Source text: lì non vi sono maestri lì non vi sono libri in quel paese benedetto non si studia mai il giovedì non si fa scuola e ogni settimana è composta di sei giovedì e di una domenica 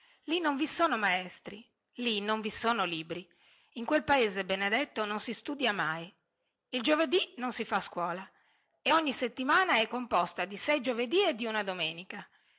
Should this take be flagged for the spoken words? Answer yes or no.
no